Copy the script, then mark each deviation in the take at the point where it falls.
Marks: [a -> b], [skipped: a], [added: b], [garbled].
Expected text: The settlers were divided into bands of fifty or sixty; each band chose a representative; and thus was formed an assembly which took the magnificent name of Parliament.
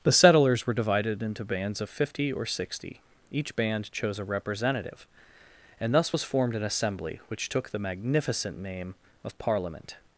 The settlers were divided into bands of fifty or sixty; each band chose a representative; and thus was formed an assembly which took the magnificent name of Parliament.